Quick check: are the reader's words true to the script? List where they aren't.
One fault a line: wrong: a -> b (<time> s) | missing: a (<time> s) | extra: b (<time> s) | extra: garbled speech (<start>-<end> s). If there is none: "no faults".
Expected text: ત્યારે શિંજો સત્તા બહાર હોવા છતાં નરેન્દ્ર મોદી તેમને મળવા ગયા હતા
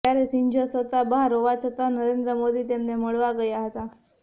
no faults